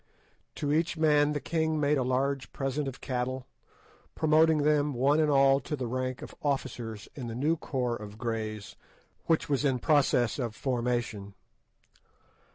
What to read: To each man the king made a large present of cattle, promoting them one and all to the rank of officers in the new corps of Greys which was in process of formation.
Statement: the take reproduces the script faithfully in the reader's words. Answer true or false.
true